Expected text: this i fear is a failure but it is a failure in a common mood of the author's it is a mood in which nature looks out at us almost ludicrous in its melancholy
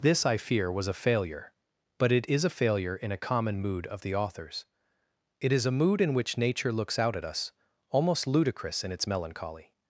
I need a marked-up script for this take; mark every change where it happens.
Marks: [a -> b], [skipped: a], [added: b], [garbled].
this i fear [is -> was] a failure but it is a failure in a common mood of the author's it is a mood in which nature looks out at us almost ludicrous in its melancholy